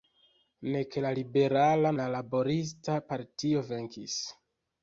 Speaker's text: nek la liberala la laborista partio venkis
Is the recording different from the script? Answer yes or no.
no